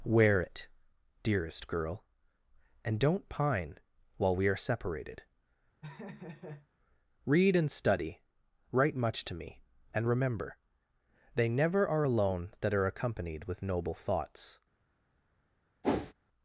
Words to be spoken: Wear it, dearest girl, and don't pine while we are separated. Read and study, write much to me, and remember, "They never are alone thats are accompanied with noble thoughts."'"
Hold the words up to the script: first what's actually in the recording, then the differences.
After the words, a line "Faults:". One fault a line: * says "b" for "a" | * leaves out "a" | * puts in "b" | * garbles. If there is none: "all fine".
Wear it, dearest girl, and don't pine while we are separated. Read and study, write much to me, and remember, "They never are alone that are accompanied with noble thoughts."'"
Faults:
* says "that" for "thats"